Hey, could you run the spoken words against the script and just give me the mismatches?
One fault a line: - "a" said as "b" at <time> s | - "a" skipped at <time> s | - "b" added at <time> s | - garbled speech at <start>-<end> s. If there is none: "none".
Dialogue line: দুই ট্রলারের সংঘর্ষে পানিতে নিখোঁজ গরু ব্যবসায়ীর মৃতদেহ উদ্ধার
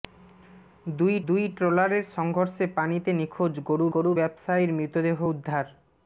- "দুই" added at 1.3 s
- "গরু" added at 3.9 s